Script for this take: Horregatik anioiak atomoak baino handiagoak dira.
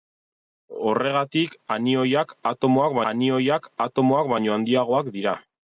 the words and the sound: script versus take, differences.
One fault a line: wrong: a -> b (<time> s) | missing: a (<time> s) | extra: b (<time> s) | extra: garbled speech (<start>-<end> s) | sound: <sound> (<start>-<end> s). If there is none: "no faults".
extra: anioiak atomoak (3.1 s)